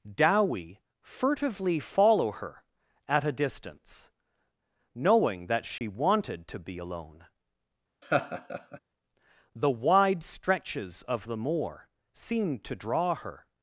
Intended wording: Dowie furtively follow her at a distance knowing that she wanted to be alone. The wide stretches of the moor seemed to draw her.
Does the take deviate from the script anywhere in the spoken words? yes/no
no